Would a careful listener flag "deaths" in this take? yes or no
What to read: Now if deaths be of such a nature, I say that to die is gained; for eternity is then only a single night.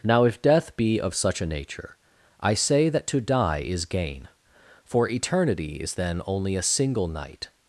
yes